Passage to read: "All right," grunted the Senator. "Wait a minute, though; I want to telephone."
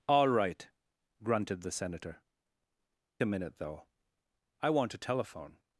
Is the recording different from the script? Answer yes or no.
yes